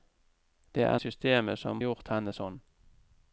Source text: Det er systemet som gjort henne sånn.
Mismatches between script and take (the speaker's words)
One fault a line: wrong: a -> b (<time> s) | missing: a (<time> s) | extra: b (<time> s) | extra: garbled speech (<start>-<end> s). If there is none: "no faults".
no faults